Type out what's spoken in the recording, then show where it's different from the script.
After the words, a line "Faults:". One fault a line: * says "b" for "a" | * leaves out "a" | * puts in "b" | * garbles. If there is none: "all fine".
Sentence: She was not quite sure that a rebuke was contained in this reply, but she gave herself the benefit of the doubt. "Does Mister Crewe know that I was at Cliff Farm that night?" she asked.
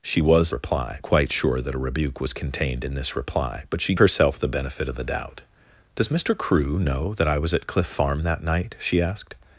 She was reply quite sure that a rebuke was contained in this reply, but she herself the benefit of the doubt. "Does Mister Crewe know that I was at Cliff Farm that night?" she asked.
Faults:
* says "reply" for "not"
* leaves out "gave"